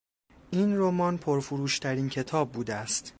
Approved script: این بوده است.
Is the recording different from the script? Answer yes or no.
yes